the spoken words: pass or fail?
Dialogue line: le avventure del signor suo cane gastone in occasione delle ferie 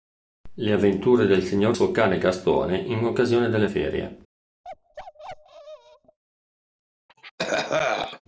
pass